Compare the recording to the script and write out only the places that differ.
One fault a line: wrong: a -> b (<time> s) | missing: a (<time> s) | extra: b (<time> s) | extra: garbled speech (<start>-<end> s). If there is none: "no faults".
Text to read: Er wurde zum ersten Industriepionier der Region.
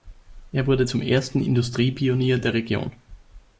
no faults